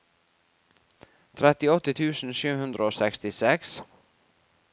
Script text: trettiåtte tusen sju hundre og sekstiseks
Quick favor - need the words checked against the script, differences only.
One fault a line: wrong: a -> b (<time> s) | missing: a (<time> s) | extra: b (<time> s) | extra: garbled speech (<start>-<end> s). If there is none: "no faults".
no faults